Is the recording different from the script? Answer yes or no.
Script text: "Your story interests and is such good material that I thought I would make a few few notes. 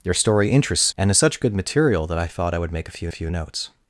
no